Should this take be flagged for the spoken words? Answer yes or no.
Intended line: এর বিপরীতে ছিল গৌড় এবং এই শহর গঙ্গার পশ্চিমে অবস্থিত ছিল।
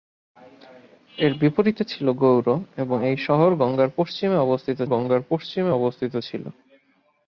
yes